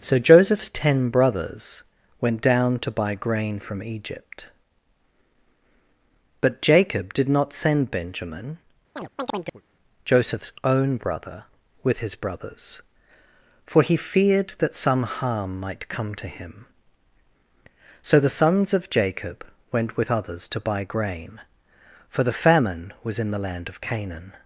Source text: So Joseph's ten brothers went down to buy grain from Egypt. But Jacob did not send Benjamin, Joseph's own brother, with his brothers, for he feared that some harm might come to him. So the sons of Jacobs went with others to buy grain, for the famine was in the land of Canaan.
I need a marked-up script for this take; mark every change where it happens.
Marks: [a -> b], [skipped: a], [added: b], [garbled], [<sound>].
So Joseph's ten brothers went down to buy grain from Egypt. But Jacob did not send Benjamin, [chirp] Joseph's own brother, with his brothers, for he feared that some harm might come to him. So the sons of [Jacobs -> Jacob] went with others to buy grain, for the famine was in the land of Canaan.